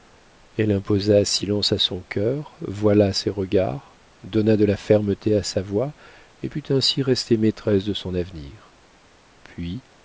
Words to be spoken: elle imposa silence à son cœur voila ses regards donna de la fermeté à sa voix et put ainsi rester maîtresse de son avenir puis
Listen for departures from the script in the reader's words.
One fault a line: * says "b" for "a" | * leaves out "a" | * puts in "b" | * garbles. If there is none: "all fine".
all fine